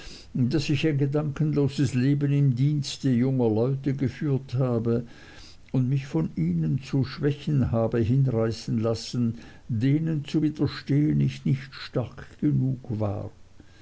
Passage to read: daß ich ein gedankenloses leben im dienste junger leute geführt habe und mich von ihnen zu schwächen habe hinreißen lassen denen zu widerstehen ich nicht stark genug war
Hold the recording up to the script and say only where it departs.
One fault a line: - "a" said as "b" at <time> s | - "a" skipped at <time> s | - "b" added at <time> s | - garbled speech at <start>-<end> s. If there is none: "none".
none